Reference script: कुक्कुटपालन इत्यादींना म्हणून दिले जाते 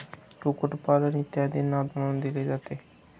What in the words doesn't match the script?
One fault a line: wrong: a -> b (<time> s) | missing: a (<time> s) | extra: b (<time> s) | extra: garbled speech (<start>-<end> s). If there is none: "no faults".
no faults